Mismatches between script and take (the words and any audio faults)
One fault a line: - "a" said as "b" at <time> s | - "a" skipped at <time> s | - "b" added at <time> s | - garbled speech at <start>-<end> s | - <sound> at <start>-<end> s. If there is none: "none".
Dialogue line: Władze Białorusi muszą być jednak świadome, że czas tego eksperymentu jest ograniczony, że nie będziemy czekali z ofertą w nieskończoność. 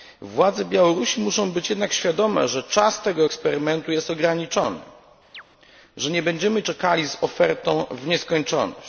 - chirp at 5.3-5.4 s